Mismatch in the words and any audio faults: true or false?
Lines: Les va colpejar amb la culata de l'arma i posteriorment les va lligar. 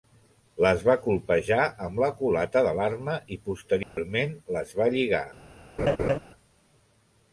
true